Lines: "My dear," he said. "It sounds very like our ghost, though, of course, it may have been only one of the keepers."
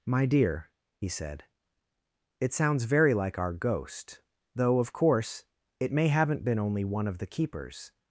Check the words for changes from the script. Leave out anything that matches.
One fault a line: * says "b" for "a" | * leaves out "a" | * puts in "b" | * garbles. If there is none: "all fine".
* says "haven't" for "have"